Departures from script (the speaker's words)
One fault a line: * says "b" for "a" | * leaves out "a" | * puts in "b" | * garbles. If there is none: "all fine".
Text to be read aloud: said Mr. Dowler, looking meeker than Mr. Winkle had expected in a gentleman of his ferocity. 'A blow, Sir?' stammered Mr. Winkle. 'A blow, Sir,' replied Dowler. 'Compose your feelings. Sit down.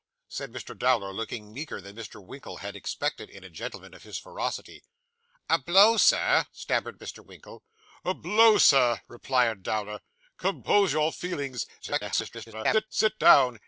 * garbles